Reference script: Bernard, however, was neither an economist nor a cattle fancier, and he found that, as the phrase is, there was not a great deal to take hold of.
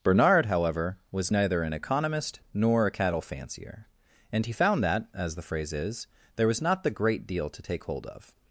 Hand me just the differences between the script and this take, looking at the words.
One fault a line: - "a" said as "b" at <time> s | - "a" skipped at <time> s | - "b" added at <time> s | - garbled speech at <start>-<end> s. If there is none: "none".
- "a" said as "the" at 6.8 s